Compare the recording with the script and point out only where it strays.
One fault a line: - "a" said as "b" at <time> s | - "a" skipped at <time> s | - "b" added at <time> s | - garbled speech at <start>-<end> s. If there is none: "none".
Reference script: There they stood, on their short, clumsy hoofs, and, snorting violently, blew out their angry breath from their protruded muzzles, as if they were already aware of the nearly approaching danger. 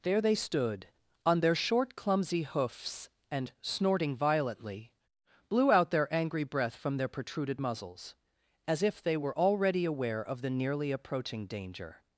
none